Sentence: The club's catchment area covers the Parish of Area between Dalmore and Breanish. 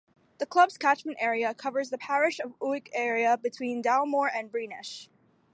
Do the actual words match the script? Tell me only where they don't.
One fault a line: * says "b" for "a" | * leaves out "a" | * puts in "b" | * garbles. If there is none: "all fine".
* puts in "Uig"